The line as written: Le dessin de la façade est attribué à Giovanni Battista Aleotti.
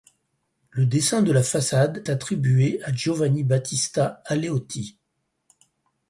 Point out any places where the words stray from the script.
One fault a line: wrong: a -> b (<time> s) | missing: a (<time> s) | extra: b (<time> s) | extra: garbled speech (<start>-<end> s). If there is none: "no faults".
missing: est (2.1 s)